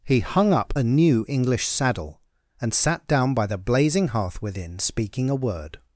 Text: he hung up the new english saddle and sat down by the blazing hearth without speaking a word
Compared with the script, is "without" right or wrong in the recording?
wrong